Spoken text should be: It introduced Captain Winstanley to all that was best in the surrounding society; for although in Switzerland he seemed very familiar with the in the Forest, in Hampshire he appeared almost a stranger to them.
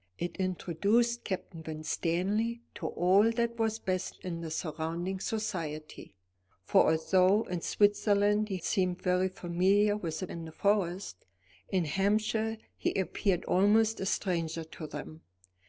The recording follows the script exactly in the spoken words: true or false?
true